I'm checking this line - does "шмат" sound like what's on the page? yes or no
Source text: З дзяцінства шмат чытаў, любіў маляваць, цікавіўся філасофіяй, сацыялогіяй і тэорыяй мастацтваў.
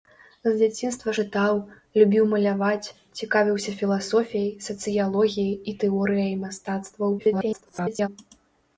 no